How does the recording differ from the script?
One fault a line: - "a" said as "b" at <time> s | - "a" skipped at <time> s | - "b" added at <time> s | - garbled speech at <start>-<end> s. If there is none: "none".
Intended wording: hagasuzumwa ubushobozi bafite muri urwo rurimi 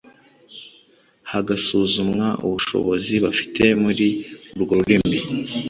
none